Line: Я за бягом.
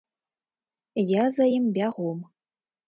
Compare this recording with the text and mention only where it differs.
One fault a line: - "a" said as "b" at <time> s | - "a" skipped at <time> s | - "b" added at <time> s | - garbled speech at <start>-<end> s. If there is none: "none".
- "ім" added at 1.6 s